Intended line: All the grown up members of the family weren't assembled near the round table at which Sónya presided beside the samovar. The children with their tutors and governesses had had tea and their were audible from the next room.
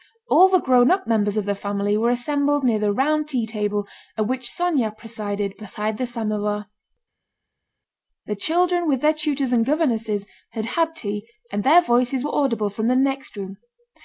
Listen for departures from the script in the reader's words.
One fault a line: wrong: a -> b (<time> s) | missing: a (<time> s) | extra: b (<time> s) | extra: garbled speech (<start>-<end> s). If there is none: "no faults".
wrong: weren't -> were (1.9 s)
extra: tea (3.3 s)
extra: voices (11.8 s)